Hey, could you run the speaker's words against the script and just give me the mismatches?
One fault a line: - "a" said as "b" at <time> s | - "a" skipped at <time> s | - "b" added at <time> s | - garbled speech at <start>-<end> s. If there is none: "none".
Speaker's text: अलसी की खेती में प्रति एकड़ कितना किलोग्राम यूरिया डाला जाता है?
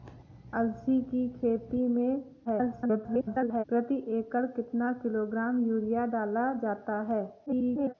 - garbled speech at 2.4-3.6 s
- garbled speech at 7.5-7.9 s